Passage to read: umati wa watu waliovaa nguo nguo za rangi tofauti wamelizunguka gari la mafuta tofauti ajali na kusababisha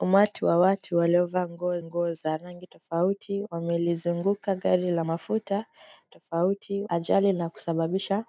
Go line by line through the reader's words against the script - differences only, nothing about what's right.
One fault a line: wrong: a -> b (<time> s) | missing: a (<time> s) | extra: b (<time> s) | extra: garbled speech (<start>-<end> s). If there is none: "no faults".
no faults